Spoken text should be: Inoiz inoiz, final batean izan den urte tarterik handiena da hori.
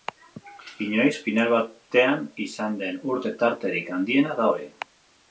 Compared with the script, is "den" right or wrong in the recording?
right